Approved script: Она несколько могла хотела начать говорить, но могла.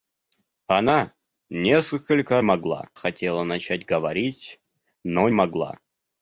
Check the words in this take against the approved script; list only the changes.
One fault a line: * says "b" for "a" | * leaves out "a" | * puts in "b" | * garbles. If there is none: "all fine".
all fine